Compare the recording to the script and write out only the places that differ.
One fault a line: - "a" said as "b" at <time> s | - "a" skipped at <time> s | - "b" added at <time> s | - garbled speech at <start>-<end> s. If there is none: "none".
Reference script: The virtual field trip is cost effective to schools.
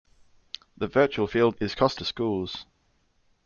- "trip" skipped at 1.6 s
- "effective" skipped at 2.0 s